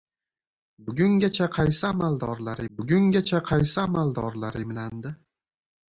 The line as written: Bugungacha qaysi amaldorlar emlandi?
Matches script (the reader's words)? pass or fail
fail